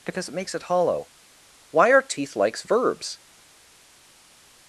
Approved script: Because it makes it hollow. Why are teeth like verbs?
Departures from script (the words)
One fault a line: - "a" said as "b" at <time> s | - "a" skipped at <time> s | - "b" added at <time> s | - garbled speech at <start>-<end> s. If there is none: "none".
- "like" said as "likes" at 2.4 s